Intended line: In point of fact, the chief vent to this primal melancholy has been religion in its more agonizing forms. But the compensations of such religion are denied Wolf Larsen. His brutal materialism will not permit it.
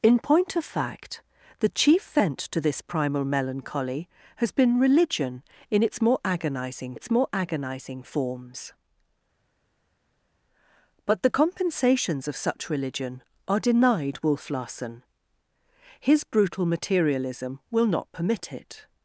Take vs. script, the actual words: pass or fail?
fail